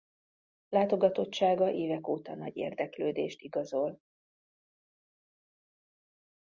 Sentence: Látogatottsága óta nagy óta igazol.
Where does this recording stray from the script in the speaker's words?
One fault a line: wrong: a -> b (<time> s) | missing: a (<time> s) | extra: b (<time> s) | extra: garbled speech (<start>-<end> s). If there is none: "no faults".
extra: évek (1.7 s)
wrong: óta -> érdeklődést (2.6 s)